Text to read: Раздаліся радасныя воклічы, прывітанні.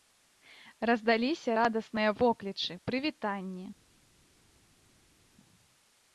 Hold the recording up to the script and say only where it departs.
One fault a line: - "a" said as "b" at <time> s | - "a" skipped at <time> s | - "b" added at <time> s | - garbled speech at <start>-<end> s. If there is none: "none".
none